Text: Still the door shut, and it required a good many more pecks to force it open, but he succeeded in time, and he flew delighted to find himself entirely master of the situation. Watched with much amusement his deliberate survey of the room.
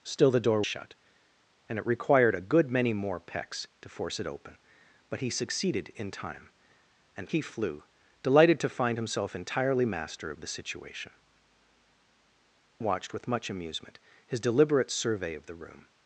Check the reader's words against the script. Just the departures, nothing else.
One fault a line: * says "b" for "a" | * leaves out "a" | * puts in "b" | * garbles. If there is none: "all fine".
all fine